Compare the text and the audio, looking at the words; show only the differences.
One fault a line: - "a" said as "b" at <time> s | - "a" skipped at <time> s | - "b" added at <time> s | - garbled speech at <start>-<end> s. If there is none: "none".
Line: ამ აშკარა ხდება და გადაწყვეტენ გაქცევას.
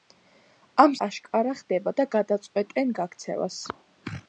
none